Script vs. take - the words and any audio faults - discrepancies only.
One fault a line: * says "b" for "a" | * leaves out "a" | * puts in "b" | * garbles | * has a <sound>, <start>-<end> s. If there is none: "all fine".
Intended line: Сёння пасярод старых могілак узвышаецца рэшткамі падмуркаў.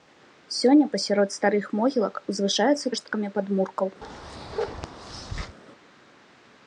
* has a bark, 4.0-5.6 s